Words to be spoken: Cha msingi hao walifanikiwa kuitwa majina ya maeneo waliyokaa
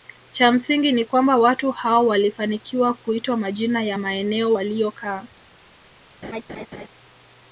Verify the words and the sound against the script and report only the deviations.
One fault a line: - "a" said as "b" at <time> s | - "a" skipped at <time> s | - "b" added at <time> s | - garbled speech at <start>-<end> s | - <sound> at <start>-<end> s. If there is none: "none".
- "ni kwamba watu" added at 0.9 s
- laugh at 6.2-6.9 s